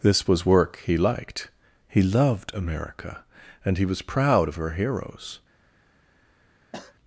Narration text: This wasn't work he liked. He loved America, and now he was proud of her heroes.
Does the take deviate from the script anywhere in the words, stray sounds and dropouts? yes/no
yes